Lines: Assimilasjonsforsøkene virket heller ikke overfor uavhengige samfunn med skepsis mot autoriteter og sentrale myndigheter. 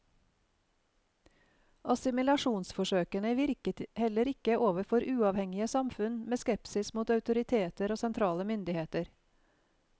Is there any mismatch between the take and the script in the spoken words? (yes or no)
no